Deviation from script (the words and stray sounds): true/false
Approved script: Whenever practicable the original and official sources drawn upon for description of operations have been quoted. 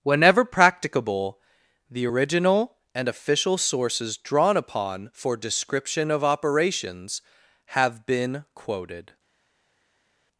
false